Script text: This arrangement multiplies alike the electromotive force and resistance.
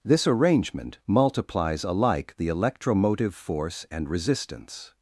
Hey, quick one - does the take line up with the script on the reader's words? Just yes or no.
yes